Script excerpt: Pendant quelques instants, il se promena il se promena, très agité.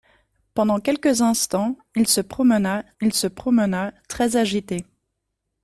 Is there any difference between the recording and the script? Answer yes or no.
no